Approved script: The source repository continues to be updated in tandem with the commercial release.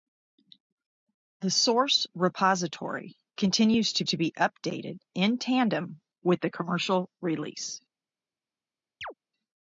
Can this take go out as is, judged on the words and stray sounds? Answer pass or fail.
fail